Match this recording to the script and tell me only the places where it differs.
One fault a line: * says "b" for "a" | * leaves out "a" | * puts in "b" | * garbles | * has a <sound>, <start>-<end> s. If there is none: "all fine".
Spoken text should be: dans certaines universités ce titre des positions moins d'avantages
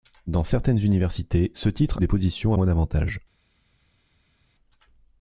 all fine